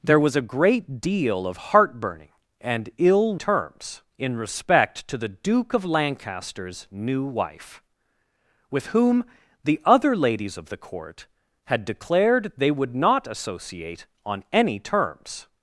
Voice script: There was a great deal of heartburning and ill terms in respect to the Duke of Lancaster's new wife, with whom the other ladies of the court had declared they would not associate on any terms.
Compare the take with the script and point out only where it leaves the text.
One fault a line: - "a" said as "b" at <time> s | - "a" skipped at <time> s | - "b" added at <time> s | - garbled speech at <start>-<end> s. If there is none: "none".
none